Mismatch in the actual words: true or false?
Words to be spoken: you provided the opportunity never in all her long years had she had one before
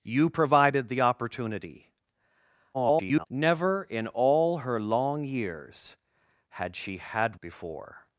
true